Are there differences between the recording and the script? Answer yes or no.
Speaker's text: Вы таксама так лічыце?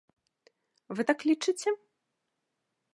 yes